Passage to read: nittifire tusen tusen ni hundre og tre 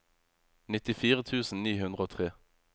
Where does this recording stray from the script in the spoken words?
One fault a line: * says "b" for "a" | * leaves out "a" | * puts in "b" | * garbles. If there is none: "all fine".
* leaves out "tusen"